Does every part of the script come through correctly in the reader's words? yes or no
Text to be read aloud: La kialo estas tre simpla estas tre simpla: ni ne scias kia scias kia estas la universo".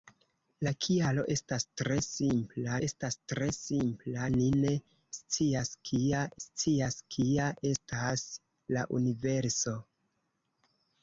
yes